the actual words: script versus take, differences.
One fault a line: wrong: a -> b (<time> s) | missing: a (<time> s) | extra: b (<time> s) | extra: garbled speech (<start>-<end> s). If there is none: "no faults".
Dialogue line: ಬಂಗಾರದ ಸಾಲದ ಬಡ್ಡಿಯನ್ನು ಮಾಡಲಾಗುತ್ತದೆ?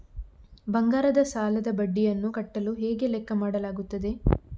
extra: ಕಟ್ಟಲು ಹೇಗೆ ಲೆಕ್ಕ (2.3 s)